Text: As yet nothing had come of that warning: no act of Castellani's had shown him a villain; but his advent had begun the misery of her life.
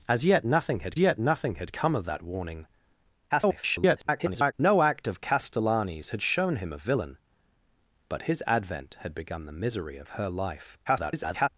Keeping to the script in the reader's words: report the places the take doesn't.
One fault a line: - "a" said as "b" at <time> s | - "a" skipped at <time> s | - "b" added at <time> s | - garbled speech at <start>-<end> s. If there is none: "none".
- "yet nothing had" added at 1.0 s
- garbled speech at 3.3-4.5 s
- garbled speech at 10.9-11.5 s